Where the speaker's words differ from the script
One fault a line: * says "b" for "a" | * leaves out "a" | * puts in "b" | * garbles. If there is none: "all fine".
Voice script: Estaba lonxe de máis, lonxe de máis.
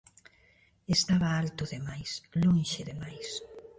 * says "alto" for "lonxe"